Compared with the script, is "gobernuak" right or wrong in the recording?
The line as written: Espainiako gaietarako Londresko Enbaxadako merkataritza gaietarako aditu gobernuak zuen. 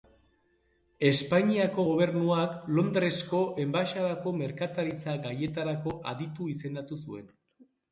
wrong